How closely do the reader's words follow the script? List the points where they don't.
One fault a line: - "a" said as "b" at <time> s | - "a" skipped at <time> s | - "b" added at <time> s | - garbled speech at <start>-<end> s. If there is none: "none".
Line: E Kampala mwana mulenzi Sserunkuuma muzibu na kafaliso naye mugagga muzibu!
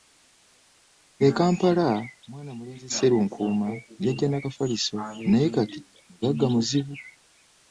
- "muzibu" said as "yajja" at 4.0 s
- "kati" added at 5.6 s